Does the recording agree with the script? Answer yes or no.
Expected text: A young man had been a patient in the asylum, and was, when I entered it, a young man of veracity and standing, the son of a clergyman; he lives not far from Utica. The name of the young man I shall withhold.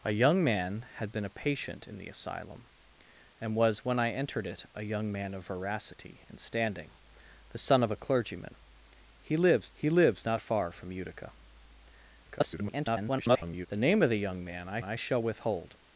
no